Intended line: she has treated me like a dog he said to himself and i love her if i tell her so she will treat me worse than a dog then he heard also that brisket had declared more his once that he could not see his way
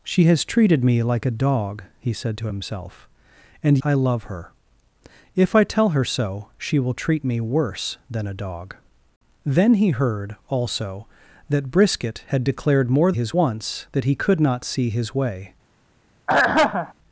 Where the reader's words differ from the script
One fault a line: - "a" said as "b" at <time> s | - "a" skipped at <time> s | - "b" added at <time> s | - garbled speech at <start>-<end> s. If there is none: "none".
none